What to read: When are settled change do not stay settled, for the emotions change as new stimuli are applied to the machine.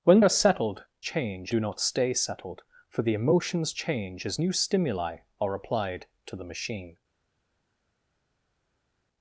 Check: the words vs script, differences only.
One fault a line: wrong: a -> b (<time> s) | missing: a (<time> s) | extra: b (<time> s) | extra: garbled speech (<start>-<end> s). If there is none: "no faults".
no faults